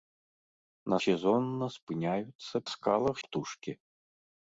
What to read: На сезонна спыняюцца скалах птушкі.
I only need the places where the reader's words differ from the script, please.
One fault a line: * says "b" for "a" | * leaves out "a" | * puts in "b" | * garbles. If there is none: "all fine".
all fine